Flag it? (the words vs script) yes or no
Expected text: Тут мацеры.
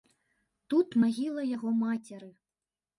yes